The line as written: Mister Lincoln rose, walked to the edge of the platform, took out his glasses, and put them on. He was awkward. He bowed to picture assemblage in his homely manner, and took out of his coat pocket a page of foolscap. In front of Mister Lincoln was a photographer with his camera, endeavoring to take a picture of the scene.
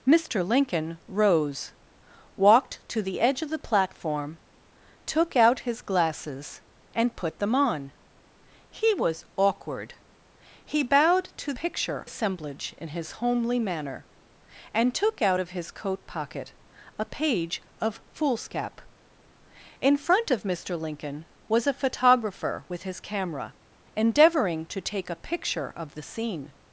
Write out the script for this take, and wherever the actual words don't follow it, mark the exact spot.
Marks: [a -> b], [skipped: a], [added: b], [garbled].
Mister Lincoln rose, walked to the edge of the platform, took out his glasses, and put them on. He was awkward. He bowed to picture assemblage in his homely manner, and took out of his coat pocket a page of foolscap. In front of Mister Lincoln was a photographer with his camera, endeavoring to take a picture of the scene.